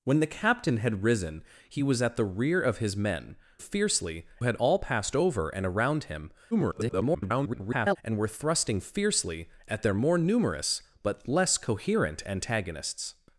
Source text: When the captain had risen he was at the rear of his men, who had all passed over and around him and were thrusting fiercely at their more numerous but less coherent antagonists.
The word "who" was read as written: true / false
false